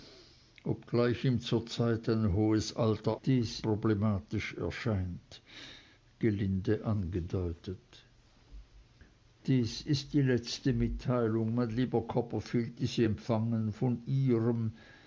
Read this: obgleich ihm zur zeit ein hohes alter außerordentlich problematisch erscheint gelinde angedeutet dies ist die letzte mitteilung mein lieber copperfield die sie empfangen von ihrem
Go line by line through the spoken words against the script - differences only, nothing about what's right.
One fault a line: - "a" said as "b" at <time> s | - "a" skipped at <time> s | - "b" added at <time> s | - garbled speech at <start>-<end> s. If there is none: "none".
- "außerordentlich" said as "dies" at 3.2 s